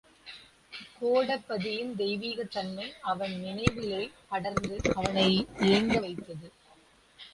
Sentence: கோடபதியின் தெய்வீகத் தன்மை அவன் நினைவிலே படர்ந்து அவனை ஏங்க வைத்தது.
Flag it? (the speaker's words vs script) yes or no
no